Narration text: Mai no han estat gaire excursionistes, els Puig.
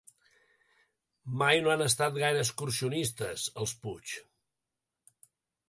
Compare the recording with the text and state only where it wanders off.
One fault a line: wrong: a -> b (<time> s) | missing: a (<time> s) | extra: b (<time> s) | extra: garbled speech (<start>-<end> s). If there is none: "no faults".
no faults